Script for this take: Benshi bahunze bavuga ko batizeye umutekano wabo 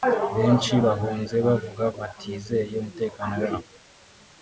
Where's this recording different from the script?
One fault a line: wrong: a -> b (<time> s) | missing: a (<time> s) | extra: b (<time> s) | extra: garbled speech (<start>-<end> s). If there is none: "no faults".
missing: ko (1.8 s)